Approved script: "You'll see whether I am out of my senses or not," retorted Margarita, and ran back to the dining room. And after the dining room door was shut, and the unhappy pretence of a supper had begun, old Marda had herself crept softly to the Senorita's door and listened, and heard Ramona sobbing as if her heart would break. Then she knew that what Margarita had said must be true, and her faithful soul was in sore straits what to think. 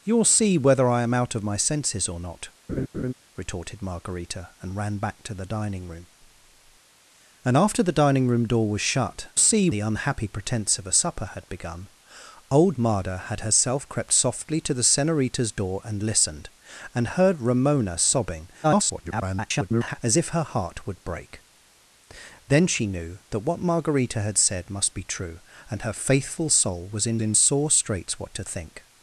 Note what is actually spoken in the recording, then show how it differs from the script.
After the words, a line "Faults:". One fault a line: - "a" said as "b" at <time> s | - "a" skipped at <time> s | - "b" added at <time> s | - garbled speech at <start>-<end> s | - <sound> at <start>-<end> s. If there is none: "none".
"You'll see whether I am out of my senses or not," retorted Margarita, and ran back to the dining room. And after the dining room door was shut, see the unhappy pretence of a supper had begun, old Marda had herself crept softly to the Senorita's door and listened, and heard Ramona sobbing [garbled] as if her heart would break. Then she knew that what Margarita had said must be true, and her faithful soul was in in sore straits what to think.
Faults:
- laugh at 2.7-3.1 s
- "and" said as "see" at 9.4 s
- garbled speech at 18.6-20.0 s
- "in" added at 27.2 s